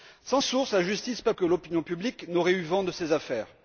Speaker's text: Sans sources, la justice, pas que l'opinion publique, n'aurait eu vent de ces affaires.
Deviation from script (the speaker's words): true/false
false